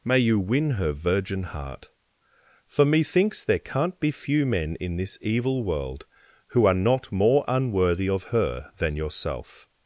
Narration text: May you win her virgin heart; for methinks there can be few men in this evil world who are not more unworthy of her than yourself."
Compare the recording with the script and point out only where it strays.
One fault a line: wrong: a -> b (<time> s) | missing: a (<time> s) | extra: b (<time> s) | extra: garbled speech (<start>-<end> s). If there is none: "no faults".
wrong: can -> can't (3.6 s)